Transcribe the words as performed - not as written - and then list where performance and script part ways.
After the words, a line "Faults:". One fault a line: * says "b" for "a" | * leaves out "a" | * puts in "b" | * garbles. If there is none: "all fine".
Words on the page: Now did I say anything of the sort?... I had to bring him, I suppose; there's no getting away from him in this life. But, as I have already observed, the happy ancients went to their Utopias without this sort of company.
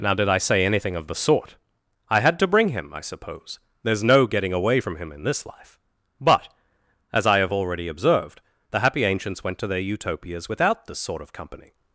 Now did I say anything of the sort?... I had to bring him, I suppose; there's no getting away from him in this life. But, as I have already observed, the happy ancients went to their Utopias without this sort of company.
Faults:
all fine